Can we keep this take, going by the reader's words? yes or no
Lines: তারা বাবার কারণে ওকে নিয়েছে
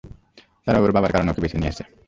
no